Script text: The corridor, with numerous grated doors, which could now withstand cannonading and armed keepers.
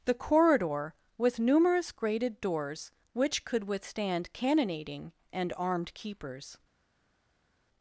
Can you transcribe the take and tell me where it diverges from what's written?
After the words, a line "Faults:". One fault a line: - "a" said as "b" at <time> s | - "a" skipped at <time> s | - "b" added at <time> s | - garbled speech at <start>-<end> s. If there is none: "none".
The corridor, with numerous grated doors, which could withstand cannonading and armed keepers.
Faults:
- "now" skipped at 3.6 s